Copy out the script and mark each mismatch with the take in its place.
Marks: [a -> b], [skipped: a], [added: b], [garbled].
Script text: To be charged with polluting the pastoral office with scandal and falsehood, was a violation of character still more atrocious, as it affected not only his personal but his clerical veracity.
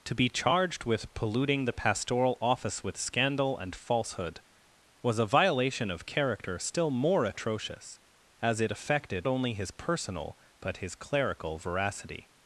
To be charged with polluting the pastoral office with scandal and falsehood, was a violation of character still more atrocious, as it affected [skipped: not] only his personal but his clerical veracity.